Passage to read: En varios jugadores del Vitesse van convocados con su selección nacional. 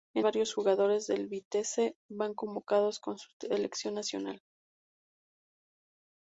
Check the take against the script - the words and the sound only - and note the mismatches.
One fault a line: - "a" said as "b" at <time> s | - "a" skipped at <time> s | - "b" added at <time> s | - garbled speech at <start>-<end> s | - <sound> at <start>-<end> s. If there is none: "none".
none